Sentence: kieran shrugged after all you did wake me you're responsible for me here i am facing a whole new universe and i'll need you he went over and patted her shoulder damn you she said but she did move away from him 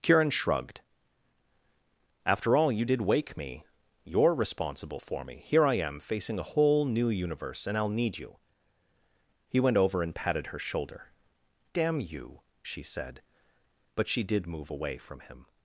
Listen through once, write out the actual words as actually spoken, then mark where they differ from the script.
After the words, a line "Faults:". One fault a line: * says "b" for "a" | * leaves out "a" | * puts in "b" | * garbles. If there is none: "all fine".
kieran shrugged after all you did wake me you're responsible for me here i am facing a whole new universe and i'll need you he went over and patted her shoulder damn you she said but she did move away from him
Faults:
all fine